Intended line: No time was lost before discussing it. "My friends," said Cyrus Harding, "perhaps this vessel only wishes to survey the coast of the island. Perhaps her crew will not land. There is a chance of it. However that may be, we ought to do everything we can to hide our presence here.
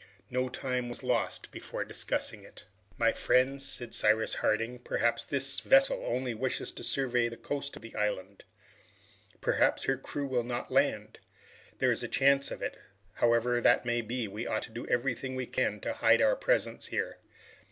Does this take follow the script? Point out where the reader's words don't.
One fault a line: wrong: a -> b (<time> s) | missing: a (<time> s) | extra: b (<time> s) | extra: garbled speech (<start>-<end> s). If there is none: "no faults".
no faults